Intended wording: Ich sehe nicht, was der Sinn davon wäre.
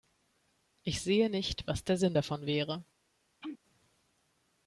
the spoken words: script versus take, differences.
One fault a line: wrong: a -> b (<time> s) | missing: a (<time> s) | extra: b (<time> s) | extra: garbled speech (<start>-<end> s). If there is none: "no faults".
no faults